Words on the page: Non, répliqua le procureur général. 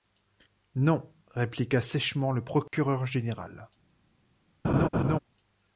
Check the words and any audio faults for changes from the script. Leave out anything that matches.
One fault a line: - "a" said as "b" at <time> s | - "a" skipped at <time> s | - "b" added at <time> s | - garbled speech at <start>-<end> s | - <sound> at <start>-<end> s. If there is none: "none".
- "sèchement" added at 1.8 s
- dropout at 2.7-2.7 s
- laugh at 4.6-5.2 s